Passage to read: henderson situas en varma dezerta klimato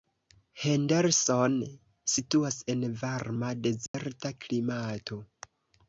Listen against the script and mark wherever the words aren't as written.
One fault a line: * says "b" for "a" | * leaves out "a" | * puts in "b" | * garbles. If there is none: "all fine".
all fine